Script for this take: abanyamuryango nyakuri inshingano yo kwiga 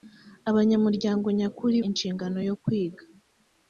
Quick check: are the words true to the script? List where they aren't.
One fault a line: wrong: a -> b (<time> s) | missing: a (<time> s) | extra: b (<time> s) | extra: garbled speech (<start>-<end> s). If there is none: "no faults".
no faults